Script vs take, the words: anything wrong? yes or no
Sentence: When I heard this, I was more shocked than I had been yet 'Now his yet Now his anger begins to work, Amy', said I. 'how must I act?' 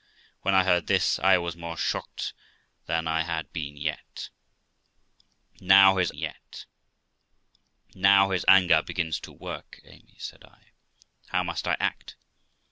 no